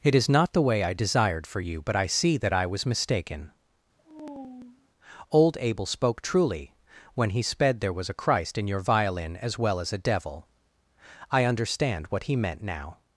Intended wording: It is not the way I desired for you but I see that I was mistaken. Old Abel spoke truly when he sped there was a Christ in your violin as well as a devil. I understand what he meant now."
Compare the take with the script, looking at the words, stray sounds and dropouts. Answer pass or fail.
fail